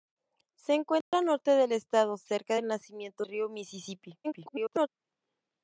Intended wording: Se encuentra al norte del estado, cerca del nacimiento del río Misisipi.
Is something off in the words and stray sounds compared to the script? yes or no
yes